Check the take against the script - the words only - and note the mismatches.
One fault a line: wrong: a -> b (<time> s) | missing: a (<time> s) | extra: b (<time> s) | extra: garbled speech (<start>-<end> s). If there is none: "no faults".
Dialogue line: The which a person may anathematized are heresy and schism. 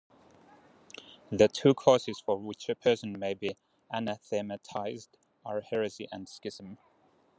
extra: two causes for (1.5 s)
extra: be (3.3 s)